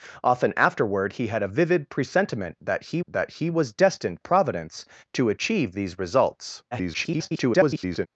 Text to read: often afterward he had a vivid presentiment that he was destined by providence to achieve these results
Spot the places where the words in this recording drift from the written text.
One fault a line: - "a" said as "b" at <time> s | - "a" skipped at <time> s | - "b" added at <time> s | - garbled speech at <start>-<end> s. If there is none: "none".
- "that he" added at 3.1 s
- "by" skipped at 4.2 s
- garbled speech at 6.7-8.1 s